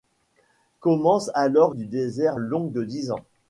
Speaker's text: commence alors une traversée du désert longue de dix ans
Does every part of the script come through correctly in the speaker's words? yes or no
no